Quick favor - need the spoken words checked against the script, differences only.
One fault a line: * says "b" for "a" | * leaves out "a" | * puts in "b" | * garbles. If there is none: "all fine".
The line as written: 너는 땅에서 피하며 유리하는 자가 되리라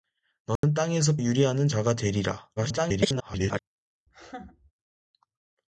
* leaves out "피하며"
* garbles